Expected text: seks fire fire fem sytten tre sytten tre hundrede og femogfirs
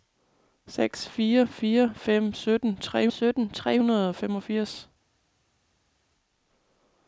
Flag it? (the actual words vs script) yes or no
no